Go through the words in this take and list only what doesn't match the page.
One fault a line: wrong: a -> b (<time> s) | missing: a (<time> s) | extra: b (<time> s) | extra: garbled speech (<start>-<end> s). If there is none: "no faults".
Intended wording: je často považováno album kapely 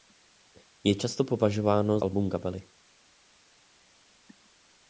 no faults